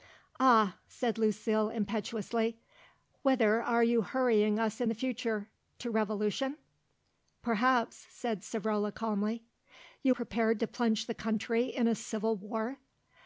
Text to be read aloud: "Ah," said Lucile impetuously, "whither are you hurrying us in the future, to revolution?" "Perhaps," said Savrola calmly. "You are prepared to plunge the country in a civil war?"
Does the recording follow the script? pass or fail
fail